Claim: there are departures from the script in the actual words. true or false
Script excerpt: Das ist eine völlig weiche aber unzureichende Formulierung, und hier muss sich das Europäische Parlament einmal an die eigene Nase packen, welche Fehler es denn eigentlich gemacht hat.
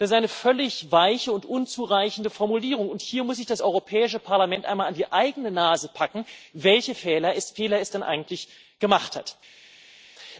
true